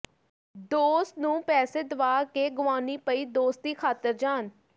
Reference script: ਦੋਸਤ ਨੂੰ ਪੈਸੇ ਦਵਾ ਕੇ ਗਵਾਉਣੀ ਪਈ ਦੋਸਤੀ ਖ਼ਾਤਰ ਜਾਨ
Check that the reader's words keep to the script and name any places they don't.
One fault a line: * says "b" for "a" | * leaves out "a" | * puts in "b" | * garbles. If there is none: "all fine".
all fine